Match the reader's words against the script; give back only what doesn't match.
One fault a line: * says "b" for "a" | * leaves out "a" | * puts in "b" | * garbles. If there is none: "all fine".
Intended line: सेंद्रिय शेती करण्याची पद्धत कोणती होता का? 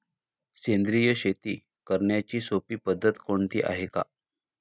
* puts in "सोपी"
* says "आहे" for "होता"